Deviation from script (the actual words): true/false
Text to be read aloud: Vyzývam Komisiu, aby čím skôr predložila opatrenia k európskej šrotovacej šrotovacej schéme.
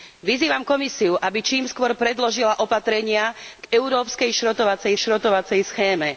false